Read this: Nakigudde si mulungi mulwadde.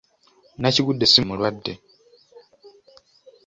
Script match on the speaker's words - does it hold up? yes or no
no